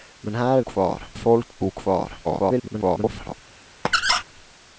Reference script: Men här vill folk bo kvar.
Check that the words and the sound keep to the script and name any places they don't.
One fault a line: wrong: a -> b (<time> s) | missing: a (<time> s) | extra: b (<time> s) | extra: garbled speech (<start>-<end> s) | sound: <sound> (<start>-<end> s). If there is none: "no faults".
wrong: vill -> kvar (0.6 s)
extra: garbled speech (2.2-3.3 s)
sound: squeak (3.8-4.2 s)